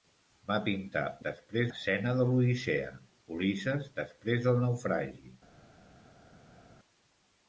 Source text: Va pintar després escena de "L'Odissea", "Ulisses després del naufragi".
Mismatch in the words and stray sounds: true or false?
false